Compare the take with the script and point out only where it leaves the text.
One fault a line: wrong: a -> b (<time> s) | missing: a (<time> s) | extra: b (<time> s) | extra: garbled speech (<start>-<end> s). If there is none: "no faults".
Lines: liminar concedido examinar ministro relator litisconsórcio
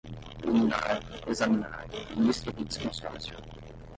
missing: concedido (1.0 s)
missing: relator (2.5 s)